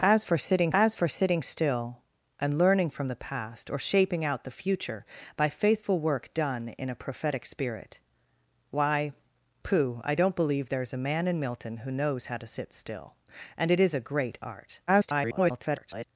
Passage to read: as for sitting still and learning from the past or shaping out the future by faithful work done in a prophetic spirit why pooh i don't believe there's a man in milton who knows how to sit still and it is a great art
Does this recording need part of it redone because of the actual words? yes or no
yes